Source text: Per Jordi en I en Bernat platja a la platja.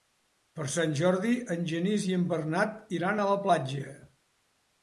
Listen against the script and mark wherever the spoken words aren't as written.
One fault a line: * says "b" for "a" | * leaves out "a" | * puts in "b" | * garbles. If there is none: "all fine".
* puts in "Sant"
* puts in "Genís"
* says "iran" for "platja"